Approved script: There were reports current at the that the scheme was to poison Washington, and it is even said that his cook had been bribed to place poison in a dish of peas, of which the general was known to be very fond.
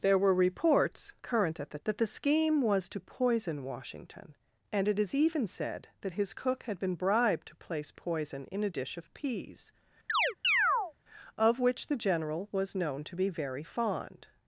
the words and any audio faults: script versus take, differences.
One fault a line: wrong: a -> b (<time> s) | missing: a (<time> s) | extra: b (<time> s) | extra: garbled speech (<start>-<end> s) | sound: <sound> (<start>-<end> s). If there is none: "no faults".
sound: chirp (10.1-10.9 s)